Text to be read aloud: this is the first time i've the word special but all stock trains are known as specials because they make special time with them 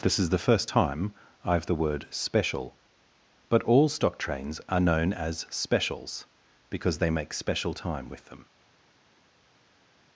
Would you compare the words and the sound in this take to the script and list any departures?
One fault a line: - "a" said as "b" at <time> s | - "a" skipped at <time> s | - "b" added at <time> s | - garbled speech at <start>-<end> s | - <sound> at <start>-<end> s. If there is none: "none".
none